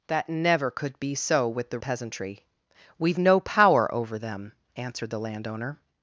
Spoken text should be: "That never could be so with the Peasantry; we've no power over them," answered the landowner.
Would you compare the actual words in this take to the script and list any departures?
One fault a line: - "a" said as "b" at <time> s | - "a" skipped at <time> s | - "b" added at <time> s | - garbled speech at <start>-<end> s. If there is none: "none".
none